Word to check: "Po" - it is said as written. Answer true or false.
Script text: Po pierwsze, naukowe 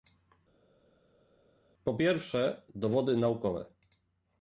true